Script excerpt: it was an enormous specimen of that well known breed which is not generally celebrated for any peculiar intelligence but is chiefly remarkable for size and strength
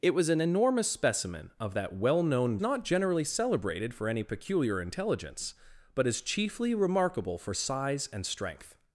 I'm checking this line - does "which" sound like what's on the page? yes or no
no